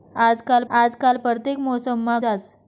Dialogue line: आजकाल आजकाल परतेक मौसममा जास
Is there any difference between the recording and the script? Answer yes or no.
no